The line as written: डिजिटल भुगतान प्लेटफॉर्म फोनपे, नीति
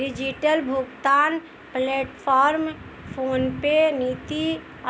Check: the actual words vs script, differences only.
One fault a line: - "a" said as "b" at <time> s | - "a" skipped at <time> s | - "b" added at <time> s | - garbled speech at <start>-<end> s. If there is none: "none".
none